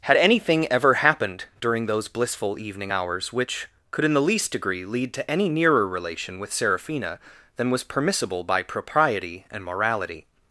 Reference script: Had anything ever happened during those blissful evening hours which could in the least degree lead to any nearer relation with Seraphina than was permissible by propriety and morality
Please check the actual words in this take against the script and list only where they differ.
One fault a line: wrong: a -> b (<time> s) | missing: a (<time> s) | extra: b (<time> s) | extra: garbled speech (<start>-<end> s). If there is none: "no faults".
no faults